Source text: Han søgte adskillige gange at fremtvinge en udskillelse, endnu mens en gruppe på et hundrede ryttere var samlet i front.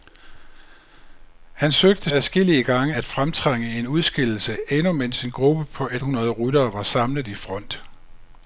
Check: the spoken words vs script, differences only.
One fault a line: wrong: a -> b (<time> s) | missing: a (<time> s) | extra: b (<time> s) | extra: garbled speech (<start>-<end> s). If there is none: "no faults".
no faults